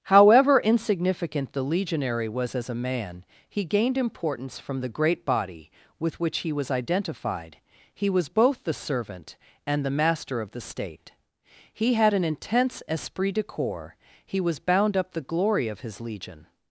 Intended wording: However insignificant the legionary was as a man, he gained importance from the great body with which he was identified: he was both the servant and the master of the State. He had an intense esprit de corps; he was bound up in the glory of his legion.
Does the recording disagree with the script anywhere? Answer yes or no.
yes